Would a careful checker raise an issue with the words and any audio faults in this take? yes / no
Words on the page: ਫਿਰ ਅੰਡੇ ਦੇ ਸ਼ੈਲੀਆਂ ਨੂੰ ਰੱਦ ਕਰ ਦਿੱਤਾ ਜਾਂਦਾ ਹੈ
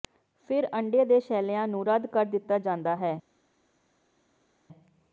no